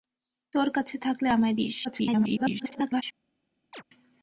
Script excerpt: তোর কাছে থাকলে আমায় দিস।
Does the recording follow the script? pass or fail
fail